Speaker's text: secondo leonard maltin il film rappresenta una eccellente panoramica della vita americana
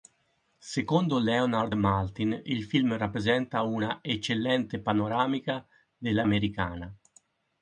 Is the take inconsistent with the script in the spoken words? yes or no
yes